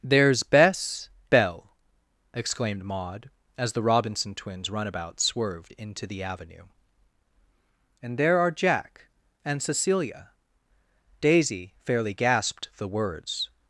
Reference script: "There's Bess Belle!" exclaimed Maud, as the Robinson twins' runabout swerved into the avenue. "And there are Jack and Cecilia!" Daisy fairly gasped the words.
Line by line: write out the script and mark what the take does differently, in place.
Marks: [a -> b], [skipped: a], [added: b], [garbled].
"There's Bess Belle!" exclaimed Maud, as the Robinson twins' runabout swerved into the avenue. "And there are Jack and Cecilia!" Daisy fairly gasped the words.